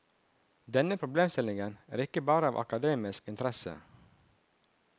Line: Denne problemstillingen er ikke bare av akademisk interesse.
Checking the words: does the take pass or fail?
pass